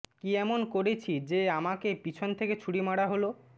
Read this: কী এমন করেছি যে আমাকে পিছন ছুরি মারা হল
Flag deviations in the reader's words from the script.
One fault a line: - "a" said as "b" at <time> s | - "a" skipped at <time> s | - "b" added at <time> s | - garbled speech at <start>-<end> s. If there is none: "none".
- "থেকে" added at 2.4 s